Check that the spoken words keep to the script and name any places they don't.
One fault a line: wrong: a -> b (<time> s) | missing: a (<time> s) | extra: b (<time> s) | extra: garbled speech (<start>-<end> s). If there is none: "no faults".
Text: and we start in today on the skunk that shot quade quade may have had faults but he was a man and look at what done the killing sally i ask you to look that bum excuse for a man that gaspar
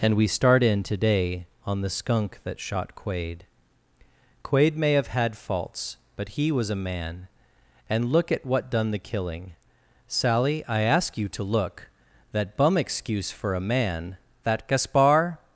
no faults